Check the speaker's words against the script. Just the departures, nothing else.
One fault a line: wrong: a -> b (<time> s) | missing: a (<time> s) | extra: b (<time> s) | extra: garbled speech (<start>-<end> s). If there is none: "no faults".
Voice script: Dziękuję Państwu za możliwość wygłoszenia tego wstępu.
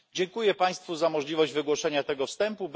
no faults